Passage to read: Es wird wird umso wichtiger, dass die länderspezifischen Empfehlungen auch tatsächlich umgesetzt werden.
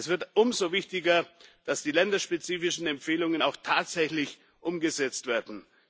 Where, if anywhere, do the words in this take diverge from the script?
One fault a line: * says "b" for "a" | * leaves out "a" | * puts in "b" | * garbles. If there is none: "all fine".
* leaves out "wird"